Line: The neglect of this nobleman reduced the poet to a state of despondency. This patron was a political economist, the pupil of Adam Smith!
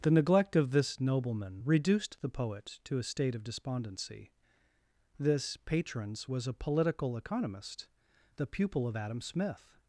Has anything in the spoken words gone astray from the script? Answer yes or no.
yes